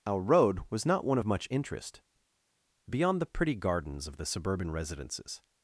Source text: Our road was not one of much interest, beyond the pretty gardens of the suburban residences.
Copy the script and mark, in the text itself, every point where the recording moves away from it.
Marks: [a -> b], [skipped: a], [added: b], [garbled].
Our road was not one of much interest, beyond the pretty gardens of the suburban residences.